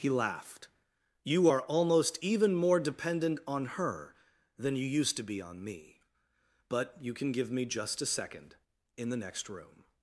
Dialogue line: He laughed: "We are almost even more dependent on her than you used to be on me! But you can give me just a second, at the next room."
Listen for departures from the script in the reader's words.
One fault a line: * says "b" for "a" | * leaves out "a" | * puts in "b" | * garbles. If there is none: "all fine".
* says "You" for "We"
* says "in" for "at"